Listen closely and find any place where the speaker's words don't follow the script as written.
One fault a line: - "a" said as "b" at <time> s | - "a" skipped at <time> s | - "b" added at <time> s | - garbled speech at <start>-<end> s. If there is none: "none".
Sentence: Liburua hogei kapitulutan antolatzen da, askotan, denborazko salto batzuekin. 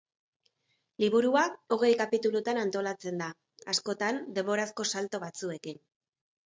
none